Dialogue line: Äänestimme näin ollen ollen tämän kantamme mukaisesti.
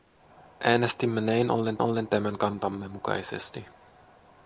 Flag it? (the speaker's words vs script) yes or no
no